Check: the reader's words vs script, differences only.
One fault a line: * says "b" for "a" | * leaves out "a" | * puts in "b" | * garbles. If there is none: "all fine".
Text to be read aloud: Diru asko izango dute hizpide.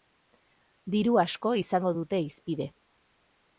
all fine